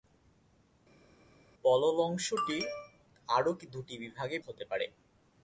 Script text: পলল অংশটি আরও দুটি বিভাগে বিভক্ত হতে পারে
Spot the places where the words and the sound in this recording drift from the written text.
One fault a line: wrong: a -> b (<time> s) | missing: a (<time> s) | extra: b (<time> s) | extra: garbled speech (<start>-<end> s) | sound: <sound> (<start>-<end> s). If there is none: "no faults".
missing: বিভক্ত (4.4 s)